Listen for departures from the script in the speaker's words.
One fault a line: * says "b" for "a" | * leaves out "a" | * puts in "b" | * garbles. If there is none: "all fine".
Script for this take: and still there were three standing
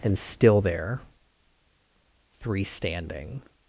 * leaves out "were"